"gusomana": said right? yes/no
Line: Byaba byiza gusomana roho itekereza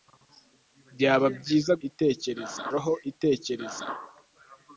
no